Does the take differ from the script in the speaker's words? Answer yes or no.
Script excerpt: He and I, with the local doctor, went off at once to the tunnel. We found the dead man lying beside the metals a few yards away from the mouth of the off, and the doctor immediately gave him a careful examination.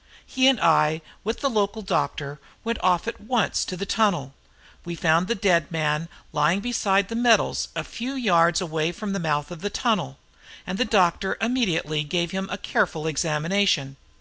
yes